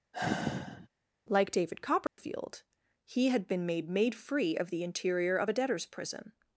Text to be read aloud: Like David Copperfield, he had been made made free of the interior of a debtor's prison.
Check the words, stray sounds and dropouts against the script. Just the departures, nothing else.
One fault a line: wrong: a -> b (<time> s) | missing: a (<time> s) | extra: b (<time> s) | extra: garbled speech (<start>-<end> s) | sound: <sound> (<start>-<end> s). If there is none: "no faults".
sound: sigh (0.1-0.9 s)
sound: dropout (2.1-2.2 s)